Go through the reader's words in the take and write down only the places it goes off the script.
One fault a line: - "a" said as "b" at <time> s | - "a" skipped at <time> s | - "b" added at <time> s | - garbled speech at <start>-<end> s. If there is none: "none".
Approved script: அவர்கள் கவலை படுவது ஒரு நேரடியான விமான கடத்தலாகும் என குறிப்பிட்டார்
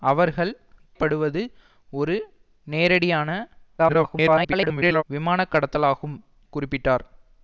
- "கவலை" skipped at 0.5 s
- garbled speech at 3.8-5.0 s
- "என" skipped at 6.2 s